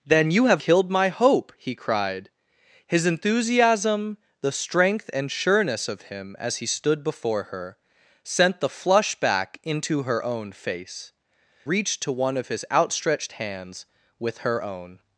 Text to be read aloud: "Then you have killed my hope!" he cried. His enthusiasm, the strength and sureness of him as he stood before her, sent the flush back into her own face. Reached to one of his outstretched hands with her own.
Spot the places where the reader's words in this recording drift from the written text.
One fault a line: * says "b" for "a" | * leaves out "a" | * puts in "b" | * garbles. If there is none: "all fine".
all fine